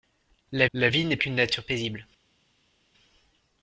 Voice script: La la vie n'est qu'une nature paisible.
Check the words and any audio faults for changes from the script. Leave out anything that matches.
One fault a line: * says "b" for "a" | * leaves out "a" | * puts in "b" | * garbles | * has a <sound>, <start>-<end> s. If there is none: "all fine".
all fine